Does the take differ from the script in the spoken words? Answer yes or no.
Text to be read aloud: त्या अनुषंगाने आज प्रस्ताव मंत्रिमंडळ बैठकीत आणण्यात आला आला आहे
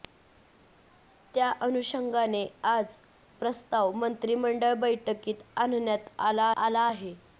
no